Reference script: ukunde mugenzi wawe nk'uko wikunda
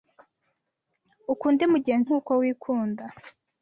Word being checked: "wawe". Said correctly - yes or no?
no